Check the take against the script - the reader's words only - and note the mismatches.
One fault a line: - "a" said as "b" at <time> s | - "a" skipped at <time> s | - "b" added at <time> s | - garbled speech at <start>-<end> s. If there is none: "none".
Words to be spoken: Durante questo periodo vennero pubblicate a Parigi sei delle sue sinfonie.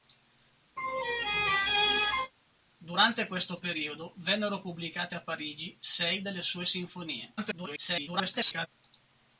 - garbled speech at 7.4-8.7 s